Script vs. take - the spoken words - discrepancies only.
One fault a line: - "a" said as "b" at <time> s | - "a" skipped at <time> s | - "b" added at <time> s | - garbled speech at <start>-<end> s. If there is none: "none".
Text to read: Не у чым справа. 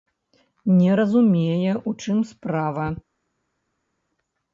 - "разумее" added at 0.9 s